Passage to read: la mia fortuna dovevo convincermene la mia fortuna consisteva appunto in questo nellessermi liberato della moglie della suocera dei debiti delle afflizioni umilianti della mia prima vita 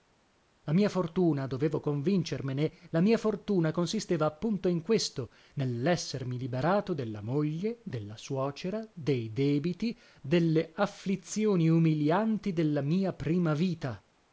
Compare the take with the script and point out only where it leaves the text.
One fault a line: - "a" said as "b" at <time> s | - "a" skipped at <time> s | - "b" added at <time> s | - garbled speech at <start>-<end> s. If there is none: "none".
none